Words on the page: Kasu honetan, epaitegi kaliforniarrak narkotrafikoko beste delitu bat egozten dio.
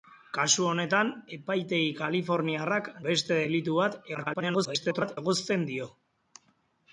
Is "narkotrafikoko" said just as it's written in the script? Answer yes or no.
no